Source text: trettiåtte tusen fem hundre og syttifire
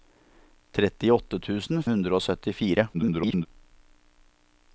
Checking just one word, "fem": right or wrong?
wrong